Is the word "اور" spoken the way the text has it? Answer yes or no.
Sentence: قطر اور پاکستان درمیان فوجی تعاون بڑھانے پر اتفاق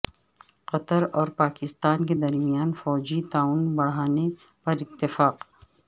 yes